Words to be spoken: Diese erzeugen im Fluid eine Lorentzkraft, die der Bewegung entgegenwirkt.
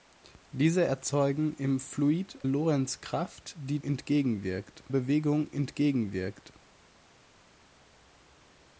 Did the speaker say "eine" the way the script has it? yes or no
no